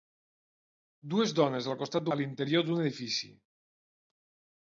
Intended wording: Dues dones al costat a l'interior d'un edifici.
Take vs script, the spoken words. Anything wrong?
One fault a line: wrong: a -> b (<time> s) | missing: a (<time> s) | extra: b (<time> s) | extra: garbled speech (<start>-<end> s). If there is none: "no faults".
no faults